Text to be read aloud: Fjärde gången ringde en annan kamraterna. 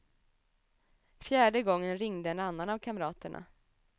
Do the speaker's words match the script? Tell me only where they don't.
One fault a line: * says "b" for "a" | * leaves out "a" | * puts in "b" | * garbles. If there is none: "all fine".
* puts in "av"